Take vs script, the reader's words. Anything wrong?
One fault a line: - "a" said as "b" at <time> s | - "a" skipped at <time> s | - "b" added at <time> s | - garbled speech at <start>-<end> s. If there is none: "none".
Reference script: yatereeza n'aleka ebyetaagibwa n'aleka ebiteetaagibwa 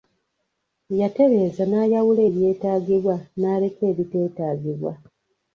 - "n'aleka" said as "n'ayawula" at 1.7 s